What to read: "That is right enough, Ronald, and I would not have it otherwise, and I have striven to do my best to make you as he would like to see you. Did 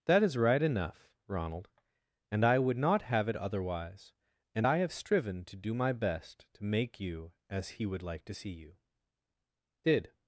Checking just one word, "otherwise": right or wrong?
right